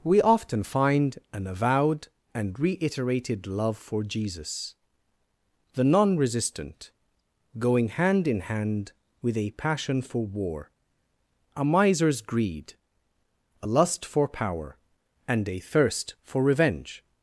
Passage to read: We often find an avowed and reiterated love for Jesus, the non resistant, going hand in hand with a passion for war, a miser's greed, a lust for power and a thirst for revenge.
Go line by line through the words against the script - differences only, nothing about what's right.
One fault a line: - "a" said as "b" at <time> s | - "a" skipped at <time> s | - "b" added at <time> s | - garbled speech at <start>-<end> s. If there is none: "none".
none